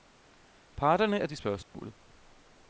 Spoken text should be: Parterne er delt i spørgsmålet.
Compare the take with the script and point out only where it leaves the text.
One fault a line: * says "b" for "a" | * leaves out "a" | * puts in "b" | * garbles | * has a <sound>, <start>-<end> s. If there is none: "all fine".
* leaves out "delt"
* has a dropout, 1.6-1.7 s